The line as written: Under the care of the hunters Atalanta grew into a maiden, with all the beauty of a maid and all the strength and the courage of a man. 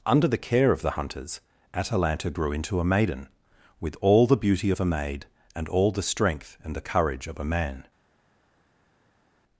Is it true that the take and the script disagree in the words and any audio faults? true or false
false